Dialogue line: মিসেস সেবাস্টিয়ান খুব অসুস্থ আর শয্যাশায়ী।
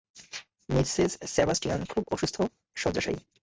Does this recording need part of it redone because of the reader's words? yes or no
yes